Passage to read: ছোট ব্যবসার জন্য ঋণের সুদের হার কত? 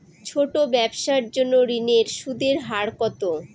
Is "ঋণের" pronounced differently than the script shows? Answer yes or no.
no